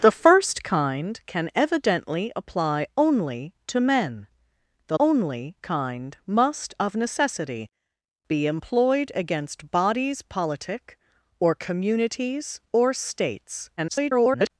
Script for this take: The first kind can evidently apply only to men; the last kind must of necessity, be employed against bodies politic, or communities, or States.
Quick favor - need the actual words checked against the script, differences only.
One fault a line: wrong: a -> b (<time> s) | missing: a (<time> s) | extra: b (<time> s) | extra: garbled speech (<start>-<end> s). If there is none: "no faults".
wrong: last -> only (5.0 s)
extra: garbled speech (13.8-14.5 s)